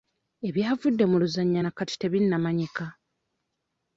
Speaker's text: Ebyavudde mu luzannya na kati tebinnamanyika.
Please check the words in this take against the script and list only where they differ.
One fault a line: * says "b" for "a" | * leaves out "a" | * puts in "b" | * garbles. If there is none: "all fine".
all fine